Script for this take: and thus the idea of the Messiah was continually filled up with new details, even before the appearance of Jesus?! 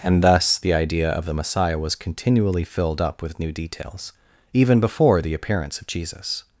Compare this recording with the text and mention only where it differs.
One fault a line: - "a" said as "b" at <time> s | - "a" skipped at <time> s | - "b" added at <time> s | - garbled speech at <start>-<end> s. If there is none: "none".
none